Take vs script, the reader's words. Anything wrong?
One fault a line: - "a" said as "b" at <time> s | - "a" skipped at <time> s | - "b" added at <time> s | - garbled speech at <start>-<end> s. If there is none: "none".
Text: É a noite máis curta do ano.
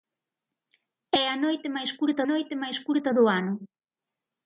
- "noite máis curta" added at 2.3 s